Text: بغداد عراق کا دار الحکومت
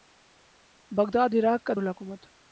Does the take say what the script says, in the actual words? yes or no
no